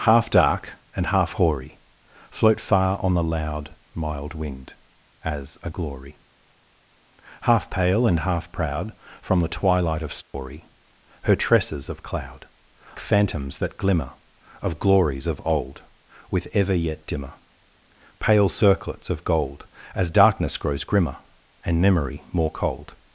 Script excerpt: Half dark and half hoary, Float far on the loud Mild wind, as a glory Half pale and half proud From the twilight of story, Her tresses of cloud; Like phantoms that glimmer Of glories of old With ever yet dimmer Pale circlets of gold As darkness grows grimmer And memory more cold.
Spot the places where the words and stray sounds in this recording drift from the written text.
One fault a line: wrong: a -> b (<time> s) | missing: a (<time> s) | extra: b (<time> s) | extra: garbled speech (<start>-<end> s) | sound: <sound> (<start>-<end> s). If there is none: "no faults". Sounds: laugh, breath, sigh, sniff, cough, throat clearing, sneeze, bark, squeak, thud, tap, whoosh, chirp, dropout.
sound: dropout (10.2-10.3 s)
missing: Like (12.5 s)